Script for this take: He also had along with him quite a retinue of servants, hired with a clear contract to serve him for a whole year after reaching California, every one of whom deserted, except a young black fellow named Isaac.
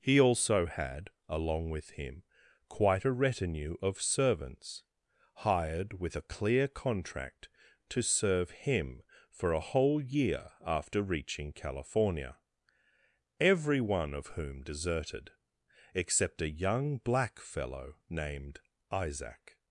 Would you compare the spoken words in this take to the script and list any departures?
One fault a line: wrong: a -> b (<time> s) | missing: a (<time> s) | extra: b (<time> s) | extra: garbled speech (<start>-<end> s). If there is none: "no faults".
no faults